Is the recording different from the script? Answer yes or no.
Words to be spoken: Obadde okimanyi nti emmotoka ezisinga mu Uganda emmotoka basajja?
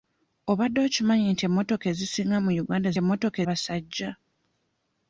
no